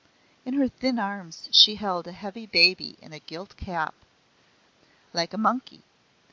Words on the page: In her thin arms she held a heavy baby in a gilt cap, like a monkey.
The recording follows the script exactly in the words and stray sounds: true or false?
true